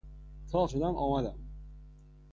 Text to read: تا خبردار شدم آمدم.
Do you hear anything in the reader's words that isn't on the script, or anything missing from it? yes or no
yes